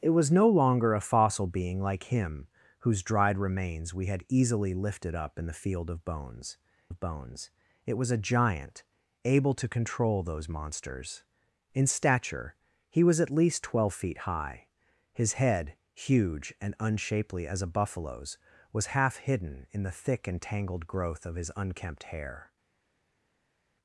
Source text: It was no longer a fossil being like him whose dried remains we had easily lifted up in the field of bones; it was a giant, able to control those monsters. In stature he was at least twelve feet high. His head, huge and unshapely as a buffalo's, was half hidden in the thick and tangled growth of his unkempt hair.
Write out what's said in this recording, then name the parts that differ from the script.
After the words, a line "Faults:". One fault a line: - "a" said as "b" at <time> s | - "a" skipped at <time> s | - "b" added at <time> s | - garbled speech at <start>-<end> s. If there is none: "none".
It was no longer a fossil being like him whose dried remains we had easily lifted up in the field of bones of bones; it was a giant, able to control those monsters. In stature he was at least twelve feet high. His head, huge and unshapely as a buffalo's, was half hidden in the thick and tangled growth of his unkempt hair.
Faults:
- "of bones" added at 6.9 s